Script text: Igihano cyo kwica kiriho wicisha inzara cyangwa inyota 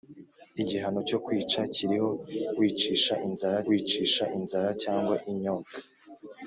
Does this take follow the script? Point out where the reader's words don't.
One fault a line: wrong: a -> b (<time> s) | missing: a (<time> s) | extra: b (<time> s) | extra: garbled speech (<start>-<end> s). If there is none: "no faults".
extra: wicisha inzara (3.7 s)